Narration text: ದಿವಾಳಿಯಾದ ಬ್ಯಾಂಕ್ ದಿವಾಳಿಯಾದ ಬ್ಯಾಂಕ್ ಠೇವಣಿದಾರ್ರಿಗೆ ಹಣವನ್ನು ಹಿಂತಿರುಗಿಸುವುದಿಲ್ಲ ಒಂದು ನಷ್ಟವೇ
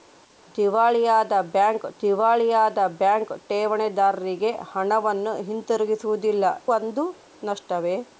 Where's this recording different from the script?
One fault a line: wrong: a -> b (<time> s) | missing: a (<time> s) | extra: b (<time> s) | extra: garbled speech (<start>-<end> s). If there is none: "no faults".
no faults